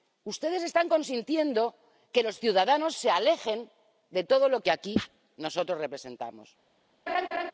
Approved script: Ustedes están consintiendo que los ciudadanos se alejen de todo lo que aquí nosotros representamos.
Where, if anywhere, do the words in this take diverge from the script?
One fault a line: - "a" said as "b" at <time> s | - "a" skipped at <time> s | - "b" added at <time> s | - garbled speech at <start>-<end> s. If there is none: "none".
none